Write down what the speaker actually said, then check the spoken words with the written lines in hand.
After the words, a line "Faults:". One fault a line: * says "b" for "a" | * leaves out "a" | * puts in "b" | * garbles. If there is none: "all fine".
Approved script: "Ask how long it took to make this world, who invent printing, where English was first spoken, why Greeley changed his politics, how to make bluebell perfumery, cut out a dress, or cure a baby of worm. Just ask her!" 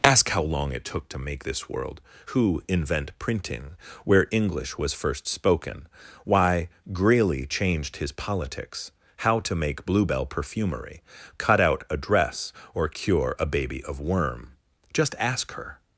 "Ask how long it took to make this world, who invent printing, where English was first spoken, why Greeley changed his politics, how to make bluebell perfumery, cut out a dress, or cure a baby of worm. Just ask her!"
Faults:
all fine